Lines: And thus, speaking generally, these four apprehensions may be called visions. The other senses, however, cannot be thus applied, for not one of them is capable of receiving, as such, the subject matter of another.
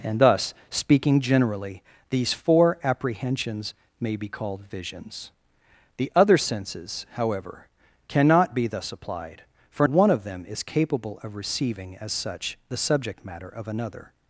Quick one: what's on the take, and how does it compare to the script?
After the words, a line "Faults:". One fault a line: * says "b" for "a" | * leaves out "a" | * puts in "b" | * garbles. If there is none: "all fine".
And thus, speaking generally, these four apprehensions may be called visions. The other senses, however, cannot be thus applied, for one of them is capable of receiving, as such, the subject matter of another.
Faults:
* leaves out "not"